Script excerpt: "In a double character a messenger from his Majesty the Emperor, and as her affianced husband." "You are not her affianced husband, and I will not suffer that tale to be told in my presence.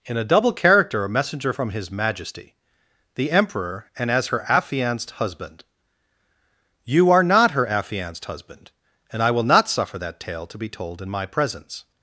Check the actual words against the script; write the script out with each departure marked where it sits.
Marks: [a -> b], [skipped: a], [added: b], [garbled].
"In a double character a messenger from his Majesty the Emperor, and as her affianced husband." "You are not her affianced husband, and I will not suffer that tale to be told in my presence.